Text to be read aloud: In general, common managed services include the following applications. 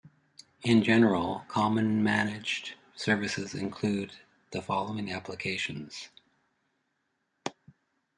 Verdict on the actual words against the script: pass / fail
pass